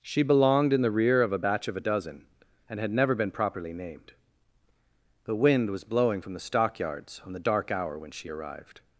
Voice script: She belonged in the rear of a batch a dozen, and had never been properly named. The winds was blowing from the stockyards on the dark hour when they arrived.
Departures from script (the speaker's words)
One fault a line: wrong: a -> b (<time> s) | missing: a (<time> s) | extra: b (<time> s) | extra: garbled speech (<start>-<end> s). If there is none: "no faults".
extra: of (1.7 s)
wrong: winds -> wind (5.4 s)
wrong: they -> she (8.1 s)